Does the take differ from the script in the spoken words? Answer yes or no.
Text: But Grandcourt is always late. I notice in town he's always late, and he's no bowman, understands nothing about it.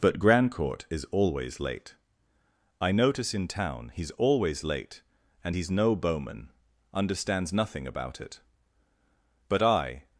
yes